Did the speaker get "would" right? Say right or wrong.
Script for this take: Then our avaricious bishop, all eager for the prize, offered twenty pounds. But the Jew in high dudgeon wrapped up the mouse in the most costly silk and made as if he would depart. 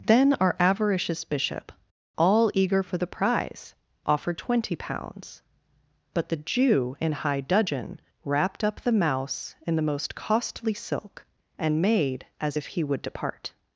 right